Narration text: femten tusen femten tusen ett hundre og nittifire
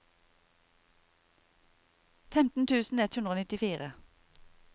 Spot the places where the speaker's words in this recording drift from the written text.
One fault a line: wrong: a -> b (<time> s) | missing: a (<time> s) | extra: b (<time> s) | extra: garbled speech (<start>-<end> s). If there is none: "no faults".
missing: femten tusen (3.0 s)